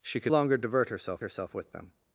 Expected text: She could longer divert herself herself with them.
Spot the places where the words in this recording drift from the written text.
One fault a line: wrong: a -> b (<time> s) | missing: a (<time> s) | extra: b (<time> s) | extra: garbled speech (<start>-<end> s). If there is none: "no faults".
no faults